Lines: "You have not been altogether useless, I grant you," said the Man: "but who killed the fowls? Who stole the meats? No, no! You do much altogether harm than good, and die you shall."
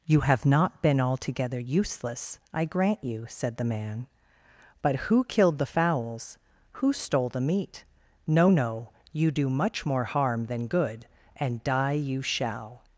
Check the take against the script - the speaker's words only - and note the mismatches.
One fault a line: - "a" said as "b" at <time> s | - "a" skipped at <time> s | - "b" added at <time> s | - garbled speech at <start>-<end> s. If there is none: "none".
- "meats" said as "meat" at 7.4 s
- "altogether" said as "more" at 9.8 s